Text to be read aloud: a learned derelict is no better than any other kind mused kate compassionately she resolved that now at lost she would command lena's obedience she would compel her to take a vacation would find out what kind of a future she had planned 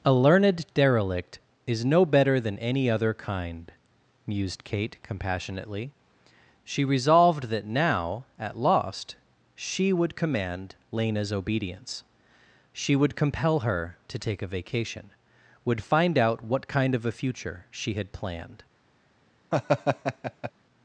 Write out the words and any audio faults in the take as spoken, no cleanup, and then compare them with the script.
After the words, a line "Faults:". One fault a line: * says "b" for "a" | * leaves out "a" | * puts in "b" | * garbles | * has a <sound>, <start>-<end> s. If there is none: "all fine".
a learned derelict is no better than any other kind mused kate compassionately she resolved that now at lost she would command lena's obedience she would compel her to take a vacation would find out what kind of a future she had planned
Faults:
* has a laugh, 19.5-20.5 s